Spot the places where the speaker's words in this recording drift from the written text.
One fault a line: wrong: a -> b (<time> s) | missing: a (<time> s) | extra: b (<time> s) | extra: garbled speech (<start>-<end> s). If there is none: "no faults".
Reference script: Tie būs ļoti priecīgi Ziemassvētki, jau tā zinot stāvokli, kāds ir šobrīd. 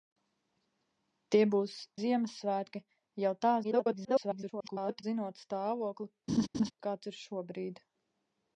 missing: ļoti priecīgi (1.8 s)
extra: garbled speech (3.6-5.0 s)